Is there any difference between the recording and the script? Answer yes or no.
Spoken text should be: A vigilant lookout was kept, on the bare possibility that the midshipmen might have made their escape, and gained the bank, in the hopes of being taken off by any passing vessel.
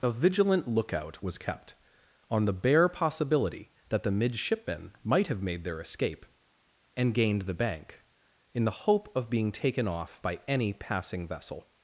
yes